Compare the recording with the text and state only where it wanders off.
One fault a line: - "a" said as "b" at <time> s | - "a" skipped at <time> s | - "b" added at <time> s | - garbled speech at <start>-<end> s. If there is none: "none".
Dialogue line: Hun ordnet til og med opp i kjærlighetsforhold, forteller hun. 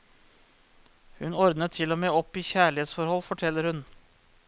none